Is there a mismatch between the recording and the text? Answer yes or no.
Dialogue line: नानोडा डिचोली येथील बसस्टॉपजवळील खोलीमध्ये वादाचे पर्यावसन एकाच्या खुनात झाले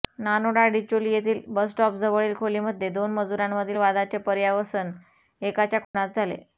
yes